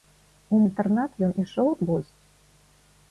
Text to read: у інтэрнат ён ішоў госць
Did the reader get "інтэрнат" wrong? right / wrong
right